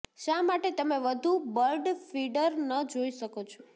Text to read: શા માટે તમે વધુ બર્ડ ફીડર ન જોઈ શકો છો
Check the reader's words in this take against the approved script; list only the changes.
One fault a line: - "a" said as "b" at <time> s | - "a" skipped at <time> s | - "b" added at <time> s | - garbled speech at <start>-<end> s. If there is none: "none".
none